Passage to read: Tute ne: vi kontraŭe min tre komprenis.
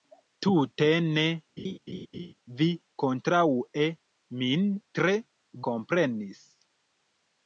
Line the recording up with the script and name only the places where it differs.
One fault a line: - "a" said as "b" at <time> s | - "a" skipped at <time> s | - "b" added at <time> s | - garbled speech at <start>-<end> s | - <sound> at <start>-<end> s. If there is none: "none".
- laugh at 1.6-2.3 s